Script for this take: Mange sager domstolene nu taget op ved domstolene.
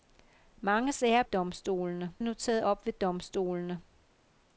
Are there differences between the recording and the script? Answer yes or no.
no